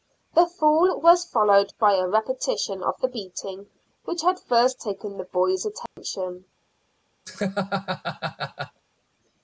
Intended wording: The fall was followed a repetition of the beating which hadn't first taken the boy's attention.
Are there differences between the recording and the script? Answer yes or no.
yes